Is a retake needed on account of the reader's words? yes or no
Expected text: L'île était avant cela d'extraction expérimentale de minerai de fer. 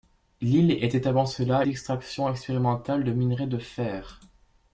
no